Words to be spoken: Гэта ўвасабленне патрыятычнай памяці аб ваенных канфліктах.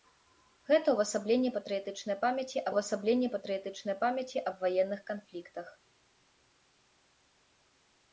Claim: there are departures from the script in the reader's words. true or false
true